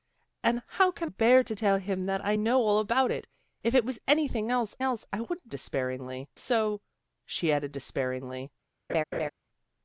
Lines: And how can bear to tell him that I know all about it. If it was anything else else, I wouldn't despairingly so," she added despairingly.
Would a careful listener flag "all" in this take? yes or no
no